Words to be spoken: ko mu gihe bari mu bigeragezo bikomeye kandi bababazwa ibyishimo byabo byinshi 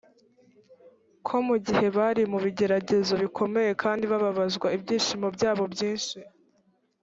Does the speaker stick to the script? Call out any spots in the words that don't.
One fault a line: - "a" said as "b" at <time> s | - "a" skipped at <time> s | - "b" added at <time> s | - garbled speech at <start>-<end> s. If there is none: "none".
none